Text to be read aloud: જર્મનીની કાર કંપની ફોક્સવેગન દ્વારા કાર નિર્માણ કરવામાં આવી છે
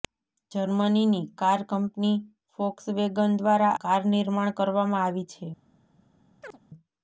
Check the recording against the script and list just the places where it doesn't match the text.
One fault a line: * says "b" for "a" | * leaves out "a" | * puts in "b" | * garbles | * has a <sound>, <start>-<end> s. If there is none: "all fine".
* has a chirp, 6.4-6.6 s